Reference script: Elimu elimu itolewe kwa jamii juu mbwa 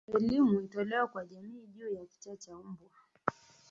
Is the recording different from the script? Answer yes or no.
yes